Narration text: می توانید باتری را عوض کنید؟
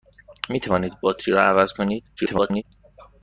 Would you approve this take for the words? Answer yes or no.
no